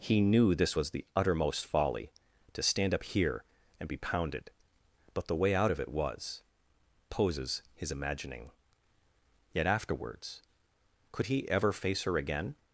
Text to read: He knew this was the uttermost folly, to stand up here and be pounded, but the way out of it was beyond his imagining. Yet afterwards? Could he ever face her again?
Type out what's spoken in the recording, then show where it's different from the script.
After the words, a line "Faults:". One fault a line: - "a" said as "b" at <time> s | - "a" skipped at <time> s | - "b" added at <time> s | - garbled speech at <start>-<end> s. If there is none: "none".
He knew this was the uttermost folly, to stand up here and be pounded, but the way out of it was poses his imagining. Yet afterwards? Could he ever face her again?
Faults:
- "beyond" said as "poses" at 7.1 s